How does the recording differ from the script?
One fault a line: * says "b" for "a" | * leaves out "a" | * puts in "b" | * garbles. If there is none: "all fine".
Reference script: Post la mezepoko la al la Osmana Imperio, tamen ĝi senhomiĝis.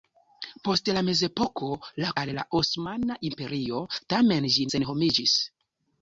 all fine